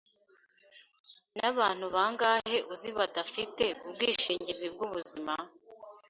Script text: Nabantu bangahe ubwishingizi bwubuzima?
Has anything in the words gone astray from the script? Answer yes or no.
yes